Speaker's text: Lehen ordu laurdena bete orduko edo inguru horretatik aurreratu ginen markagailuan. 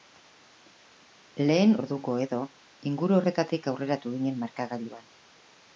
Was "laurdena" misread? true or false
true